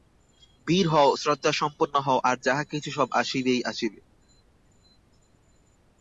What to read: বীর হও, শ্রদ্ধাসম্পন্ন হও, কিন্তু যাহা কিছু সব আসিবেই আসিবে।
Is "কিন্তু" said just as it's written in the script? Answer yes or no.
no